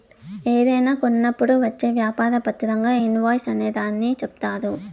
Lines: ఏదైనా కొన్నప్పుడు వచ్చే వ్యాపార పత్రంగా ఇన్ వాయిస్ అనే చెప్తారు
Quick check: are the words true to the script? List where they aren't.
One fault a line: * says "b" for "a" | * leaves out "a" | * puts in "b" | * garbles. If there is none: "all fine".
* puts in "దాన్ని"